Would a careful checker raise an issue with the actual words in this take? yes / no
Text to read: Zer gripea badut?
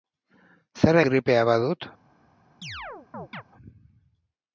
no